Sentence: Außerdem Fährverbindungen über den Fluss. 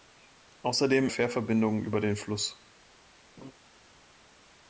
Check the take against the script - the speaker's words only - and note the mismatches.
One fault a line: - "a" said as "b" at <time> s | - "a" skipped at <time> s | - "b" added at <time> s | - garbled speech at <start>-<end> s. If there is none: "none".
none